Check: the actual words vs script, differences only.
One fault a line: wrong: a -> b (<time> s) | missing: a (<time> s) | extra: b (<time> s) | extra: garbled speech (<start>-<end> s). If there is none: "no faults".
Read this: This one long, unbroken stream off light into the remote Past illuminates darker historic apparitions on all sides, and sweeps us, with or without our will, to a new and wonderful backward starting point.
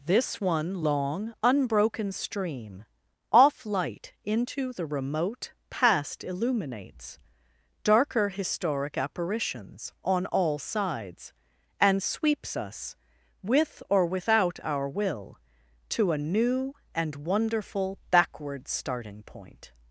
no faults